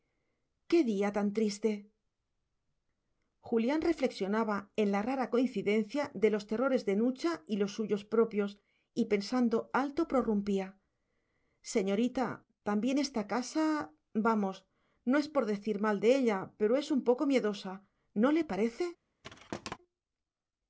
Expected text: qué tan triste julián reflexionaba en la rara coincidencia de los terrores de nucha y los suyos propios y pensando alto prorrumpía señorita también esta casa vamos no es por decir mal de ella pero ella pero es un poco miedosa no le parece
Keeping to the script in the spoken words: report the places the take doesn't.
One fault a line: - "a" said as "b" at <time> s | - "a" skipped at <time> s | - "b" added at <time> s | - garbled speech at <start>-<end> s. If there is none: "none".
- "día" added at 0.9 s
- "ella pero" skipped at 16.8 s